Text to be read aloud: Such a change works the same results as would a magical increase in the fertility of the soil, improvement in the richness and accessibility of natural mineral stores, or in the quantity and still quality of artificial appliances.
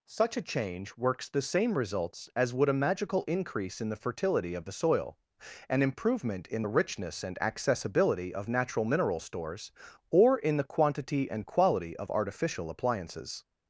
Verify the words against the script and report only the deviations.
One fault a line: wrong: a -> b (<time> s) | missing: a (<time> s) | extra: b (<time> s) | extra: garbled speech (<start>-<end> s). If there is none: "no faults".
extra: an (5.7 s)
missing: still (11.5 s)